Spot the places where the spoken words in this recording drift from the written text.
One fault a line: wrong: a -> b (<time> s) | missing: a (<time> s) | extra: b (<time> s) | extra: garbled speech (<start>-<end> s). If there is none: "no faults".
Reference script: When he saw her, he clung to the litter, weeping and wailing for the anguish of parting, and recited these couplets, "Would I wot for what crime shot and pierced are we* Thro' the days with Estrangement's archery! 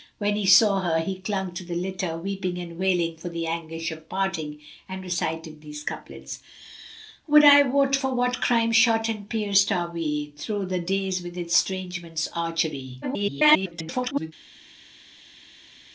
extra: garbled speech (13.0-14.3 s)